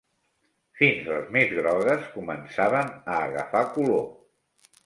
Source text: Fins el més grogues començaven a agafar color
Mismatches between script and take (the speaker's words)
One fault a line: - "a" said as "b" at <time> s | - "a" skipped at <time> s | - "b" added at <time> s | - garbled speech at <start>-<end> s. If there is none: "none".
- "el" said as "les" at 1.1 s